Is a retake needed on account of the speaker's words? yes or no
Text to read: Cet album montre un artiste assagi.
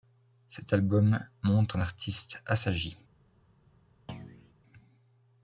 no